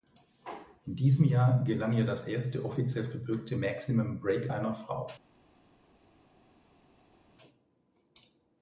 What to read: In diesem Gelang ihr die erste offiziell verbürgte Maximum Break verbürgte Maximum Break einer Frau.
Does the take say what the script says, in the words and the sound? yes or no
no